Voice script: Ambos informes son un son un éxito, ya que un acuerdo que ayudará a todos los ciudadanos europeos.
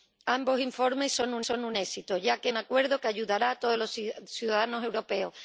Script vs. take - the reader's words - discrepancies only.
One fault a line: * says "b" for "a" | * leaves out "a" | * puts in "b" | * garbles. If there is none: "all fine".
all fine